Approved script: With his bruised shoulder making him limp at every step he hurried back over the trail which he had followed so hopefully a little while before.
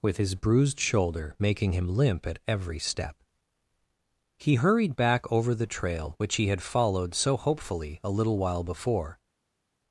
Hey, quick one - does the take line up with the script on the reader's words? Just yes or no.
yes